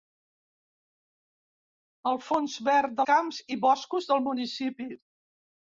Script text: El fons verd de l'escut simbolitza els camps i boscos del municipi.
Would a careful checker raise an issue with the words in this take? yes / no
yes